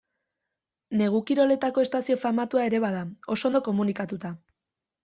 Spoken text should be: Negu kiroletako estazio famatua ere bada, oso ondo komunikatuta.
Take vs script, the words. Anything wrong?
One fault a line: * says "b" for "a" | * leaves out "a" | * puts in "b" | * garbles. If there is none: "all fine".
all fine